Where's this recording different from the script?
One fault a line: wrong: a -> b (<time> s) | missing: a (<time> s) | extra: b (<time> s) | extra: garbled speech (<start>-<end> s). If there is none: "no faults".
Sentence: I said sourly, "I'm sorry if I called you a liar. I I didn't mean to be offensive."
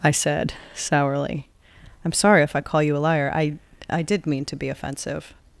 wrong: called -> call (2.6 s)
wrong: didn't -> did (4.0 s)